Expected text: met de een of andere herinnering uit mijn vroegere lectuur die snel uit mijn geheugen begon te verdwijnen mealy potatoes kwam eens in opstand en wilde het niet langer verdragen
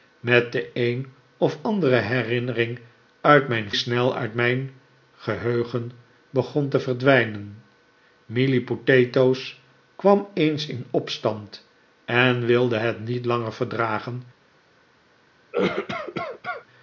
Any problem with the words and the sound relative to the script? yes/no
yes